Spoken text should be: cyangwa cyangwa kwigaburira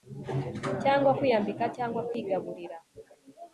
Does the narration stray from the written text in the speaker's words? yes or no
yes